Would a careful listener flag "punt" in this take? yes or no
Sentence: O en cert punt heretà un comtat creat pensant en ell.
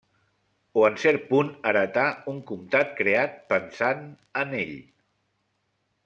no